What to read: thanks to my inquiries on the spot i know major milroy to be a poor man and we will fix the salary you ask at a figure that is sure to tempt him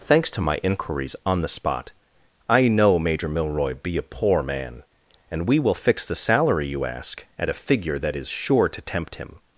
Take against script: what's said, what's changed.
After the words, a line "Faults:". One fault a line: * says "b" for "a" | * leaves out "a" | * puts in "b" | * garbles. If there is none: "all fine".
thanks to my inquiries on the spot i know major milroy be a poor man and we will fix the salary you ask at a figure that is sure to tempt him
Faults:
* leaves out "to"